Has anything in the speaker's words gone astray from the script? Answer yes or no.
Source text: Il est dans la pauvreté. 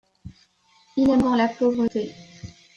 no